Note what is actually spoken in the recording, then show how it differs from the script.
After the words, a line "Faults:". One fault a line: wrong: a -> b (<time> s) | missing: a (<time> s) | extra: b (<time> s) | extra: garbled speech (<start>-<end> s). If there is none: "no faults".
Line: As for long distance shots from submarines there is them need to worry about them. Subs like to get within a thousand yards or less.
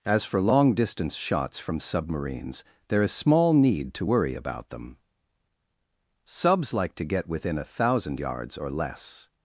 As for long distance shots from submarines there is small need to worry about them. Subs like to get within a thousand yards or less.
Faults:
wrong: them -> small (3.1 s)